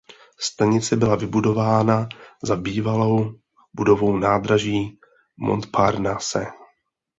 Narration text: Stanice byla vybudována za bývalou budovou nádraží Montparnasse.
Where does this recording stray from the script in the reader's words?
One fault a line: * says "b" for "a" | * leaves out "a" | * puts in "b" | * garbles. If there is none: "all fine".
all fine